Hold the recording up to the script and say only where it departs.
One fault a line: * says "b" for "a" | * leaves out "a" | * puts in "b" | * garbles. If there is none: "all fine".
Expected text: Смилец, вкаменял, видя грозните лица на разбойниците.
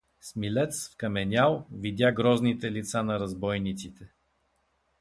all fine